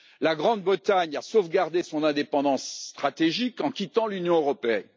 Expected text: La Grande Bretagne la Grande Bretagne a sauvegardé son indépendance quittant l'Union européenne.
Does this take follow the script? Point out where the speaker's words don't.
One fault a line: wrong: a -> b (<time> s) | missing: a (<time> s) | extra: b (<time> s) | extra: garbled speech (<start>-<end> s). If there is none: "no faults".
missing: la Grande Bretagne (1.1 s)
extra: stratégique en (2.9 s)